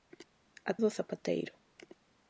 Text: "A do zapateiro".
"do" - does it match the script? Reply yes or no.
yes